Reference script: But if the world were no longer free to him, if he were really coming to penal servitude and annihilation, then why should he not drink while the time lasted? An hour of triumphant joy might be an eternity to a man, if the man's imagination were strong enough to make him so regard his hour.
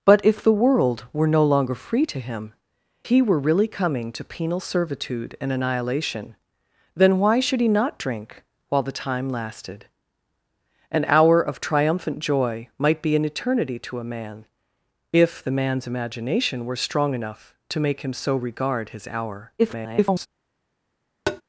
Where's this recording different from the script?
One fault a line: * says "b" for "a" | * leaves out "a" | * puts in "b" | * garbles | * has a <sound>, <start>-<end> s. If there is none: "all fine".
* leaves out "if"
* garbles
* has a tap, 21.3-21.4 s